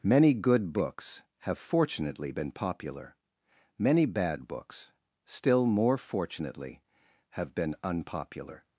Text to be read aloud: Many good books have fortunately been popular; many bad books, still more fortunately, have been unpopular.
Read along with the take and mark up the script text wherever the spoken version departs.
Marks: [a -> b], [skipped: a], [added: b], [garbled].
Many good books have fortunately been popular; many bad books, still more fortunately, have been unpopular.